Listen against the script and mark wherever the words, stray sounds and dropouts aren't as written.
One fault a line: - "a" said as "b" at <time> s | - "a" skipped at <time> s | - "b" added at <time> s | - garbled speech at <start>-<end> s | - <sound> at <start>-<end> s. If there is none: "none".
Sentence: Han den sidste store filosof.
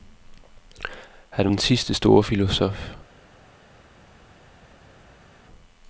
none